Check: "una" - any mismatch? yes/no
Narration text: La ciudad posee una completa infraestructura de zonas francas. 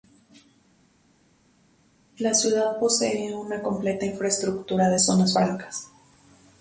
no